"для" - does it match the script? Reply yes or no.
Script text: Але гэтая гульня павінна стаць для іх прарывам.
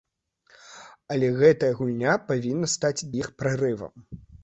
no